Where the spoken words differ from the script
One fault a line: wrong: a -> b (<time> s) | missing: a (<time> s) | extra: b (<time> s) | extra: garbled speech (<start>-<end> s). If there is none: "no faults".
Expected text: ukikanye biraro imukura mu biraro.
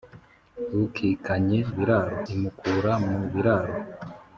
no faults